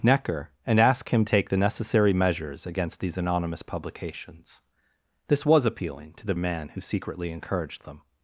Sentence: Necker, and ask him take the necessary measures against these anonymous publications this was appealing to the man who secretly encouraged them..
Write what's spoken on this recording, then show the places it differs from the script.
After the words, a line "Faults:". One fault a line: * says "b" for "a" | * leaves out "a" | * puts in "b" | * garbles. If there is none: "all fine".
Necker, and ask him take the necessary measures against these anonymous publications this was appealing to the man who secretly encouraged them..
Faults:
all fine